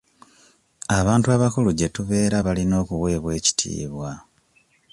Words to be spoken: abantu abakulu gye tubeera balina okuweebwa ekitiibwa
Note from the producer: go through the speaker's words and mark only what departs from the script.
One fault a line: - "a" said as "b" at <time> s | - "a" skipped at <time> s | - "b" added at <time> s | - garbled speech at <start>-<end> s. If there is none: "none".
none